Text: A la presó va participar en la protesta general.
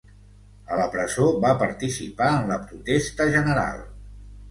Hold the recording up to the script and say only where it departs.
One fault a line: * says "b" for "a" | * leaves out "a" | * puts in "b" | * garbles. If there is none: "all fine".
all fine